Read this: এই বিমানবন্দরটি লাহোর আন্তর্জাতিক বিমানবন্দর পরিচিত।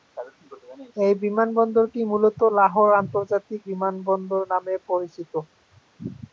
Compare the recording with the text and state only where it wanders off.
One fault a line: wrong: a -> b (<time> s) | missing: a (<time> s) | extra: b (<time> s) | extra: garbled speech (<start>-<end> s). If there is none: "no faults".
extra: মূলত (2.1 s)
extra: নামে (4.5 s)